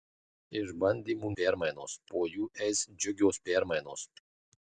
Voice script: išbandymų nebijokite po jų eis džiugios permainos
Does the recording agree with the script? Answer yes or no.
no